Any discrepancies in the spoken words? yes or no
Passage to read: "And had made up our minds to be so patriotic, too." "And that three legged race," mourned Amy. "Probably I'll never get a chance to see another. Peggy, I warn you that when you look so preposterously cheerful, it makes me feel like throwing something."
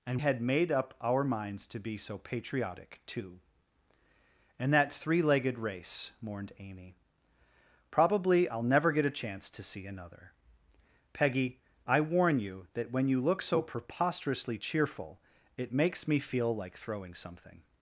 no